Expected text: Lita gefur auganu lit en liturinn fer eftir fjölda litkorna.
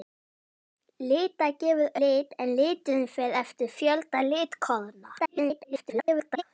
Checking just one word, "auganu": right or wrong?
wrong